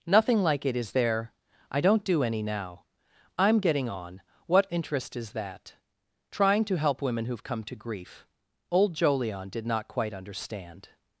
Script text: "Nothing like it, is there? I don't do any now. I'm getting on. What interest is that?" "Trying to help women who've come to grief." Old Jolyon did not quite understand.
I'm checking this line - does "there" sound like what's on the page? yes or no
yes